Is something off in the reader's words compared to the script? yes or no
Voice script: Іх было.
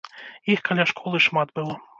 yes